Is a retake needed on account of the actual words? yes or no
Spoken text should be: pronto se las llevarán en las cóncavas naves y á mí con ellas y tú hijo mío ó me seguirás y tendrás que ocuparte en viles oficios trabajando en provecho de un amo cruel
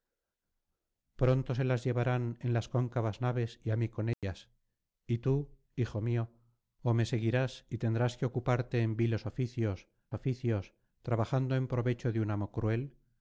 yes